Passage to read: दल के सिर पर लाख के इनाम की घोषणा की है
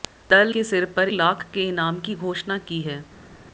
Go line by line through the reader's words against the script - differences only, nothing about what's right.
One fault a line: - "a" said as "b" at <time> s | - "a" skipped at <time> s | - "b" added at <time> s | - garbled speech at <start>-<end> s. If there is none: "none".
none